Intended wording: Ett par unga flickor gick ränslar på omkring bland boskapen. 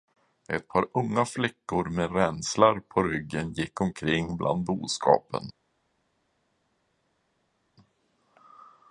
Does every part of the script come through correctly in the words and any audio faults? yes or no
no